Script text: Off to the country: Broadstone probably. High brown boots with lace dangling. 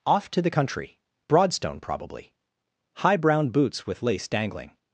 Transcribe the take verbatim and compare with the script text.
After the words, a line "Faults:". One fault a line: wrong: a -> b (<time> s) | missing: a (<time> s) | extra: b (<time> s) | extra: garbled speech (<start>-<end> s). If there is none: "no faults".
Off to the country: Broadstone probably. High brown boots with lace dangling.
Faults:
no faults